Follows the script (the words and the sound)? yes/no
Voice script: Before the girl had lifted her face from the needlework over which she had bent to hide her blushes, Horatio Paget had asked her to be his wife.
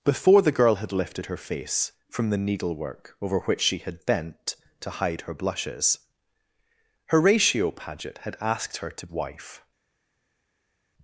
no